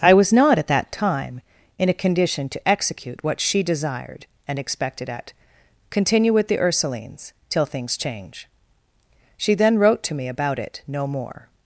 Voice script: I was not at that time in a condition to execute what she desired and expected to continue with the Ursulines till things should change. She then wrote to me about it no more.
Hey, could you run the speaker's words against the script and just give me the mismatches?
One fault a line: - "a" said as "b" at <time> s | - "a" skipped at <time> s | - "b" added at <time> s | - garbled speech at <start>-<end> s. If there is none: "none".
- "to" said as "at" at 5.1 s
- "should" skipped at 8.0 s